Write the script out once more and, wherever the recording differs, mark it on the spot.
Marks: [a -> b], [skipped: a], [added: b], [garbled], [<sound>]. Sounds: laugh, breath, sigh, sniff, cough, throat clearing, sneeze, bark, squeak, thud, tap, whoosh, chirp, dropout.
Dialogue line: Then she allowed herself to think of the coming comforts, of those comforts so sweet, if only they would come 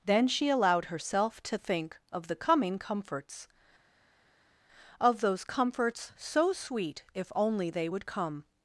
Then she allowed herself to think of the coming comforts, of those comforts so sweet, if only they would come